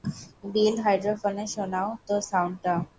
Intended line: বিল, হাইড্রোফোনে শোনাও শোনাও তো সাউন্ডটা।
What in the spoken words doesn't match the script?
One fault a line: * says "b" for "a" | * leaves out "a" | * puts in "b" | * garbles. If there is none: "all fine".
* leaves out "শোনাও"